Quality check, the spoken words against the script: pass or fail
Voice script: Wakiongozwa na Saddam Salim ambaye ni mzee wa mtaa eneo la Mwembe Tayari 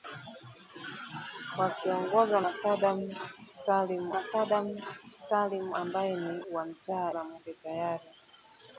fail